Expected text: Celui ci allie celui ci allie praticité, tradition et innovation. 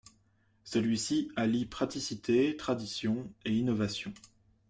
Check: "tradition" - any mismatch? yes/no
no